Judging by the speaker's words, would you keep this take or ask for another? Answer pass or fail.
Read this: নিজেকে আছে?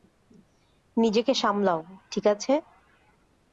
fail